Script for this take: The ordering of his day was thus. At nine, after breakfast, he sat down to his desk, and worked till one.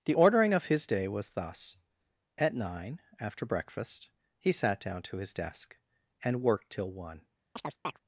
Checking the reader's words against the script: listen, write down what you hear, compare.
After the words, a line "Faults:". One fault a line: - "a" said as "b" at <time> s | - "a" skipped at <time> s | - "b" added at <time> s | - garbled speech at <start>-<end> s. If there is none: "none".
The ordering of his day was thus. At nine, after breakfast, he sat down to his desk, and worked till one.
Faults:
none